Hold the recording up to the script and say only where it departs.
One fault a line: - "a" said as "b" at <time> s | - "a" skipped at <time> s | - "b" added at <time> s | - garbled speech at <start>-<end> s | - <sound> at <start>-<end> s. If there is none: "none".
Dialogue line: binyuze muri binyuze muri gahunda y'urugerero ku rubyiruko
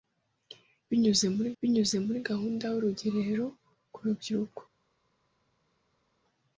none